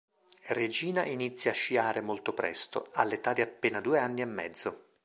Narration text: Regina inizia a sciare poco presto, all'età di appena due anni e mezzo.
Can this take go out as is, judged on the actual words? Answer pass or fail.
fail